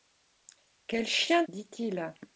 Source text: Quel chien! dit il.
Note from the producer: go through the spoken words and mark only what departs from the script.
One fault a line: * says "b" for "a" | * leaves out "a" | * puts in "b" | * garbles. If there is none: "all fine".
all fine